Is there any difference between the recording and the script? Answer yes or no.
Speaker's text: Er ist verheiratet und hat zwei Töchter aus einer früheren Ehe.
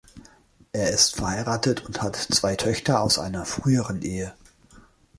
no